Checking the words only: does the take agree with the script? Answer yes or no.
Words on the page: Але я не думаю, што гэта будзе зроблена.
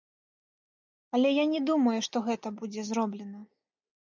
yes